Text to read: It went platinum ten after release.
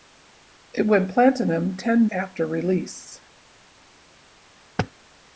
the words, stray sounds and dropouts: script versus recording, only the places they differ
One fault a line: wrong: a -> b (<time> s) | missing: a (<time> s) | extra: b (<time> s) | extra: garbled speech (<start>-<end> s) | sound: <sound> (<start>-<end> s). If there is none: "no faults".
no faults